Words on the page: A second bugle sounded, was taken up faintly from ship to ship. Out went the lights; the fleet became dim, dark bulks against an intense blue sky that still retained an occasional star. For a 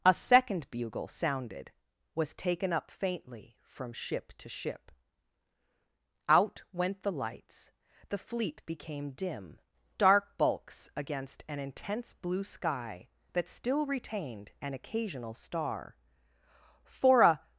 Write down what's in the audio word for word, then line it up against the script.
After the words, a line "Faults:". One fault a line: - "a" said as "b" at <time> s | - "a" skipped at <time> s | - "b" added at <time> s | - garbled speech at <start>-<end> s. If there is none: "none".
A second bugle sounded, was taken up faintly from ship to ship. Out went the lights; the fleet became dim, dark bulks against an intense blue sky that still retained an occasional star. For a
Faults:
none